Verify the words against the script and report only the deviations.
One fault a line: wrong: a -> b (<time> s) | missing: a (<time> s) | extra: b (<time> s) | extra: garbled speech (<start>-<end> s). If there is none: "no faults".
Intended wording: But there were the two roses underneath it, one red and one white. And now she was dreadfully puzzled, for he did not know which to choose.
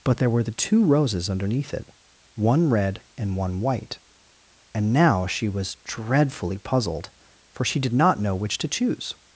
wrong: he -> she (7.7 s)